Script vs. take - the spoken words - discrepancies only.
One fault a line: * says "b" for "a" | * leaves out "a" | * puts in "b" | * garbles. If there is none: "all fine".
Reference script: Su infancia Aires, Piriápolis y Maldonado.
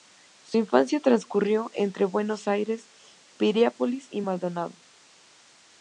* puts in "transcurrió entre Buenos"